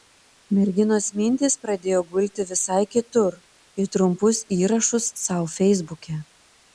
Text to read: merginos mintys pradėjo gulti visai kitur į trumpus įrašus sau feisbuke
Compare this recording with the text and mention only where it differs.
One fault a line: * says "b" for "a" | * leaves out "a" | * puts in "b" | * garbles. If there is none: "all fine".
all fine